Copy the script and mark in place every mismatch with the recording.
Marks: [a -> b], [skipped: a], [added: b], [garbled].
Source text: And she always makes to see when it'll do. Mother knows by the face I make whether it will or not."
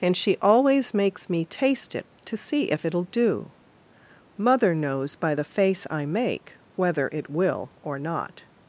And she always makes [added: me taste it] to see [when -> if] it'll do. Mother knows by the face I make whether it will or not."